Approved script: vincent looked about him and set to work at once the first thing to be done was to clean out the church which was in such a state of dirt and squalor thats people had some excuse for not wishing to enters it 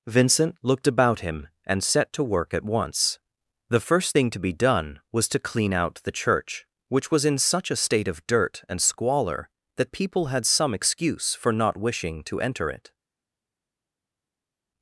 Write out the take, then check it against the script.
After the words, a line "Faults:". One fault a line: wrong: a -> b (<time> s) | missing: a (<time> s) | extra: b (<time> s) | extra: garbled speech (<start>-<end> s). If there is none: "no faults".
vincent looked about him and set to work at once the first thing to be done was to clean out the church which was in such a state of dirt and squalor that people had some excuse for not wishing to enter it
Faults:
wrong: thats -> that (9.8 s)
wrong: enters -> enter (12.4 s)